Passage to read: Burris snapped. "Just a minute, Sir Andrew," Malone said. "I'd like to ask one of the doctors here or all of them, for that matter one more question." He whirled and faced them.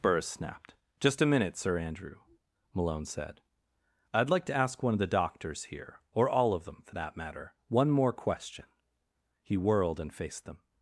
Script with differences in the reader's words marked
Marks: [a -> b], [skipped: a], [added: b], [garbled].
Burris snapped. "Just a minute, Sir Andrew," Malone said. "I'd like to ask one of the doctors here or all of them, for that matter one more question." He whirled and faced them.